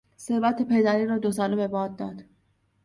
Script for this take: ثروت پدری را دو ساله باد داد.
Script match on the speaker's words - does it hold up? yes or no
no